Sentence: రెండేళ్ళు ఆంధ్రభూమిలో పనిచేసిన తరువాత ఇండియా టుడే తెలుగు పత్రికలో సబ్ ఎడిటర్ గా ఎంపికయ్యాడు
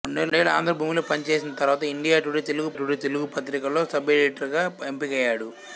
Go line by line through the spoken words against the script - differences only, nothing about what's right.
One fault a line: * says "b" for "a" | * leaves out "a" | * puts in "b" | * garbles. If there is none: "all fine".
* puts in "టుడే తెలుగు"